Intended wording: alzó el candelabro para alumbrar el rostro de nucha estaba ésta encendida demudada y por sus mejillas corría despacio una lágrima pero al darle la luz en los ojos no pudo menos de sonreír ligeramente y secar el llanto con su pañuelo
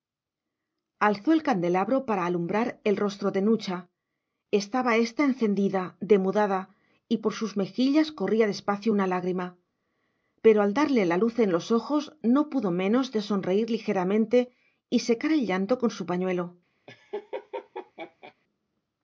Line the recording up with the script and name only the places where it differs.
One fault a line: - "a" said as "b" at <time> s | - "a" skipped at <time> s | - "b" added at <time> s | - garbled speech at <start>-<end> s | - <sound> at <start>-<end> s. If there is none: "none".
- laugh at 16.9-18.3 s